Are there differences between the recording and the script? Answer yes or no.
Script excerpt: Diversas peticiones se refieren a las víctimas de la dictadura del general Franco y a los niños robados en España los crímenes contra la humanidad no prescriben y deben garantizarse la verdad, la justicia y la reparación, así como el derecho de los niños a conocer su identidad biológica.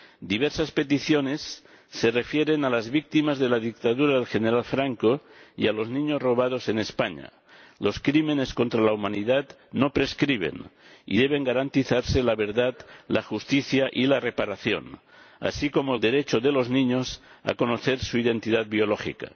no